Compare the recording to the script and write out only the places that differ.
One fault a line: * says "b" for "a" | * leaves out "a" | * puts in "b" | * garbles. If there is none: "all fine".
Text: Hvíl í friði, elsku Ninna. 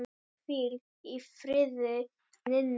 * leaves out "elsku"